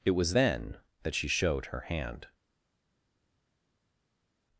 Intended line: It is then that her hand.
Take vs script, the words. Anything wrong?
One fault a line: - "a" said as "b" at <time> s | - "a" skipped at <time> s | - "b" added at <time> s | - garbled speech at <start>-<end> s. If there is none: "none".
- "is" said as "was" at 0.1 s
- "she showed" added at 1.1 s